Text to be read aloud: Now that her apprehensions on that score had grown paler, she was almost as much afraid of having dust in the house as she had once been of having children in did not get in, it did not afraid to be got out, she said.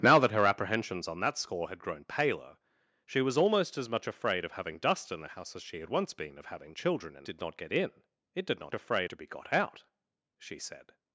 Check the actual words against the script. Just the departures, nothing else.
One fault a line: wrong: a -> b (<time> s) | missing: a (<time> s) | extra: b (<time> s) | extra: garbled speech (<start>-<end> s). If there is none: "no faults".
no faults